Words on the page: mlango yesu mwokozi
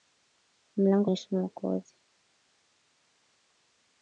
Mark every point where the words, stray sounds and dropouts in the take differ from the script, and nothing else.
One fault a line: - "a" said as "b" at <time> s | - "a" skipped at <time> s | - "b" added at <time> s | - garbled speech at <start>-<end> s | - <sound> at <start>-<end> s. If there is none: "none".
none